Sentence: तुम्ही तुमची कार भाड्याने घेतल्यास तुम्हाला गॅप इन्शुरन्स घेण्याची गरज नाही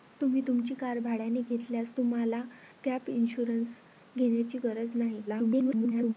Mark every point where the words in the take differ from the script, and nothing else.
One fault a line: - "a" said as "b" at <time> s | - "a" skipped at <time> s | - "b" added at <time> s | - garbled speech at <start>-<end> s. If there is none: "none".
- garbled speech at 5.3-6.1 s